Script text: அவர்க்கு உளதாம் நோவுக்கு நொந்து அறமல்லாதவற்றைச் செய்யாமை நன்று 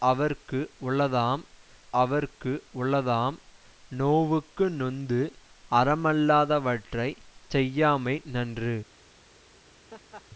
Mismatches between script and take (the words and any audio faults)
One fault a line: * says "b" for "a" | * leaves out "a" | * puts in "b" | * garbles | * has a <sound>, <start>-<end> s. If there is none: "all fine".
* puts in "அவர்க்கு உளதாம்"
* has a laugh, 9.9-10.2 s